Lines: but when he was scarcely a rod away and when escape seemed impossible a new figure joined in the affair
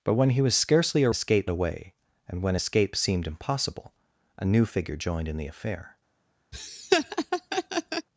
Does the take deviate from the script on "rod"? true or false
true